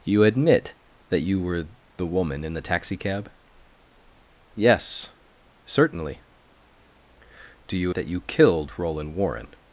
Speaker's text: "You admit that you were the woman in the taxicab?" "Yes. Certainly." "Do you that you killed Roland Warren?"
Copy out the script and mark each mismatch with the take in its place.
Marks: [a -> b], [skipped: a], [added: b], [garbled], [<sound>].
"You admit that you were the woman in the taxicab?" "Yes. Certainly." "Do you that you killed Roland Warren?"